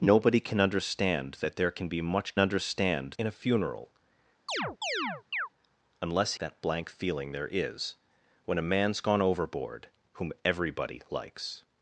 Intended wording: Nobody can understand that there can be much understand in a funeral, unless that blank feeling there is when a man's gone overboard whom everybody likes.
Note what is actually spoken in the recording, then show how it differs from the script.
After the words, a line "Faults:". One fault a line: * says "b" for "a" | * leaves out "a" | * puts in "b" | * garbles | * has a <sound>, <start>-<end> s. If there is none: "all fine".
Nobody can understand that there can be much understand in a funeral, unless that blank feeling there is when a man's gone overboard whom everybody likes.
Faults:
* has a chirp, 4.5-5.5 s